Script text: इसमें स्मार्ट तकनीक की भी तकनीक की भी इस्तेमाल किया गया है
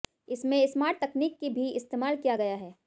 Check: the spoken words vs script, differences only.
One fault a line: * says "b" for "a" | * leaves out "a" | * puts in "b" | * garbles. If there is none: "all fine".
* leaves out "तकनीक की भी"